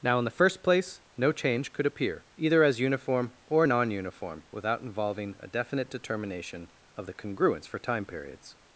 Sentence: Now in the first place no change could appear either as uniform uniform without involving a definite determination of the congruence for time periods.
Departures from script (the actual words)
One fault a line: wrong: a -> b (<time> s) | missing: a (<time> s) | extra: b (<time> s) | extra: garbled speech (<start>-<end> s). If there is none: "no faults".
extra: or non (3.5 s)